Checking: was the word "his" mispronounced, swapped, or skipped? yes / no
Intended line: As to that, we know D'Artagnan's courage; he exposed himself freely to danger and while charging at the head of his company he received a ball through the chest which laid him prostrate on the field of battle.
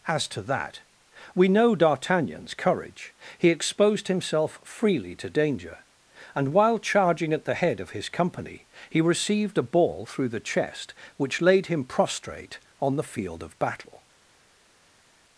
no